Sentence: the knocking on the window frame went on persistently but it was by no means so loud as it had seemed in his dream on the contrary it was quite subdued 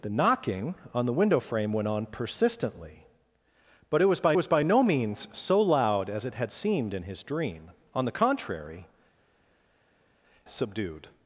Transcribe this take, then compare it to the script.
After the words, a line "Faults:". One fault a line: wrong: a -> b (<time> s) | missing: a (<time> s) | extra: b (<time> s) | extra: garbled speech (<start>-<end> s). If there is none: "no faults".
the knocking on the window frame went on persistently but it was by was by no means so loud as it had seemed in his dream on the contrary subdued
Faults:
extra: was by (4.3 s)
missing: it was quite (8.9 s)